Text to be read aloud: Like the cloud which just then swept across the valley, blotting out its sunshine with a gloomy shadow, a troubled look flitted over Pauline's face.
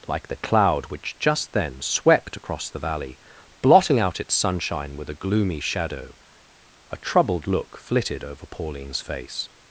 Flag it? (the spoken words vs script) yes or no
no